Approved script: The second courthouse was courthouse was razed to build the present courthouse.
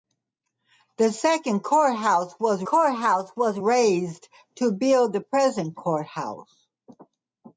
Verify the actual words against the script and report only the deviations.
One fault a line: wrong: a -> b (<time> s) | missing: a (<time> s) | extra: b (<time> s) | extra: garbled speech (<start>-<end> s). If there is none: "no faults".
no faults